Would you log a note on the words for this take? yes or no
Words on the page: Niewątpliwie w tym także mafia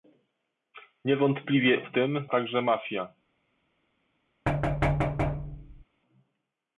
no